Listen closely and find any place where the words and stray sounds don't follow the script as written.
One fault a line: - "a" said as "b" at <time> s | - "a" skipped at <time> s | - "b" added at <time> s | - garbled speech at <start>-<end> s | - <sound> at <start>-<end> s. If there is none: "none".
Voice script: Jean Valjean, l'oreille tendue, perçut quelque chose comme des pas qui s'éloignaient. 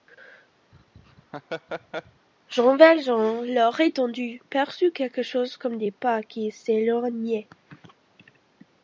- laugh at 0.7-2.3 s